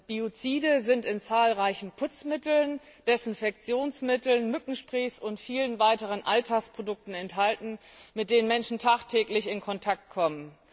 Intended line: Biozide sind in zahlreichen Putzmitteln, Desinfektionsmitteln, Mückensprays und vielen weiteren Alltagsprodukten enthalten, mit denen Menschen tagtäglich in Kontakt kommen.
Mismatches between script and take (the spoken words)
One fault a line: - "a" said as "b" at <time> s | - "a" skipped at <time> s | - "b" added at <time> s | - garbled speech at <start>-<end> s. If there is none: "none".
none